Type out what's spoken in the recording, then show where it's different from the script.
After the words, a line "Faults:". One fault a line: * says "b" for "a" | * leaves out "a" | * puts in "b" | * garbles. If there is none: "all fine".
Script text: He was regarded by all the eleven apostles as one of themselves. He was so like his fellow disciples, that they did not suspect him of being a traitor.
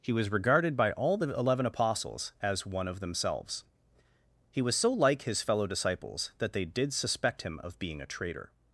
He was regarded by all the eleven apostles as one of themselves. He was so like his fellow disciples, that they did suspect him of being a traitor.
Faults:
* leaves out "not"